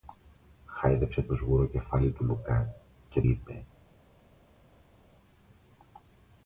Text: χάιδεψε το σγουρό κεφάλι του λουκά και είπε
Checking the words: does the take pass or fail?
pass